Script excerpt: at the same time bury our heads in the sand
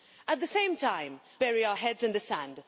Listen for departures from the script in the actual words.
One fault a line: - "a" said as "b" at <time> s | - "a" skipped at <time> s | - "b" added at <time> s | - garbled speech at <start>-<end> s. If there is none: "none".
none